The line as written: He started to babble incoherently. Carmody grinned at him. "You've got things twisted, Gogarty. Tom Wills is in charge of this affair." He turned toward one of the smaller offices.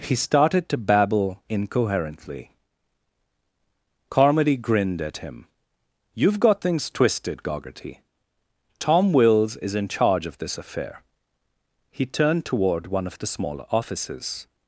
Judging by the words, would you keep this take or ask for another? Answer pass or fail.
pass